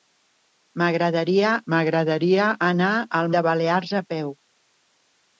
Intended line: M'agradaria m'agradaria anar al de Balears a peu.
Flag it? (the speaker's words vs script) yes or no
no